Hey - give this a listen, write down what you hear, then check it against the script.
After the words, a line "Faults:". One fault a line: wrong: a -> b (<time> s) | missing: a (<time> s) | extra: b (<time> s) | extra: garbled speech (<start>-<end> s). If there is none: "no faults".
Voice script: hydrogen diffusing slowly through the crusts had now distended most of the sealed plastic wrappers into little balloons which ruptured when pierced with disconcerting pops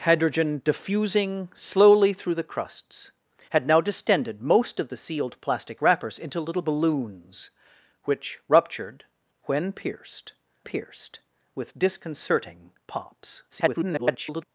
hydrogen diffusing slowly through the crusts had now distended most of the sealed plastic wrappers into little balloons which ruptured when pierced pierced with disconcerting pops [garbled]
Faults:
extra: pierced (10.6 s)
extra: garbled speech (13.5-14.4 s)